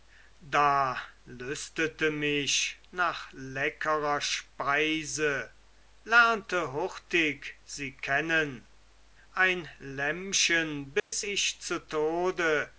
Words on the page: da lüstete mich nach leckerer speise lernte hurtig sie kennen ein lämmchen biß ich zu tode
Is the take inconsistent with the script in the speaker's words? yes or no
no